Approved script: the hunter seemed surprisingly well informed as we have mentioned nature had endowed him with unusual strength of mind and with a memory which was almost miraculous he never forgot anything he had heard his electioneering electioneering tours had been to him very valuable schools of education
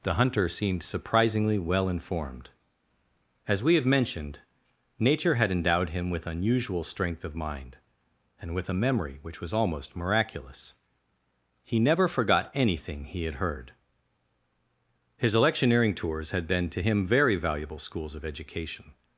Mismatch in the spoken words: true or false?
true